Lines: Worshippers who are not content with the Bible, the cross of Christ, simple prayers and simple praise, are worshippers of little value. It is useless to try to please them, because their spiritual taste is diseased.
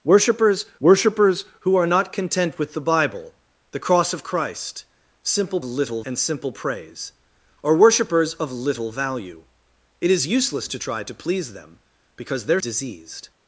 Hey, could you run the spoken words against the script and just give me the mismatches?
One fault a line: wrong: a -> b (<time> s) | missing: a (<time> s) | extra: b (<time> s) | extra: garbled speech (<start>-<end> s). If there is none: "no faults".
extra: worshippers (0.8 s)
wrong: prayers -> little (5.6 s)
missing: spiritual taste is (12.6 s)